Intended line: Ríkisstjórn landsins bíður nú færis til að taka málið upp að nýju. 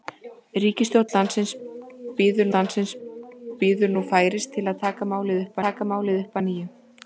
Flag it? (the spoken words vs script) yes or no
yes